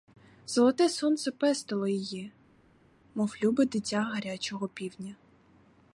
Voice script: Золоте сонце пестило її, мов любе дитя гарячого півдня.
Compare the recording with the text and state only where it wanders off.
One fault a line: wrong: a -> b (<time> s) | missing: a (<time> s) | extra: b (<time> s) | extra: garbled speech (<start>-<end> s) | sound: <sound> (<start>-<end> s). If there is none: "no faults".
no faults